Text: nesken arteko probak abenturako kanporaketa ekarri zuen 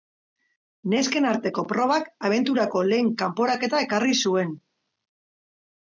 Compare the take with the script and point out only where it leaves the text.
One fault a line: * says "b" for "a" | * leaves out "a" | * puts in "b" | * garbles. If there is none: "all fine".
* puts in "lehen"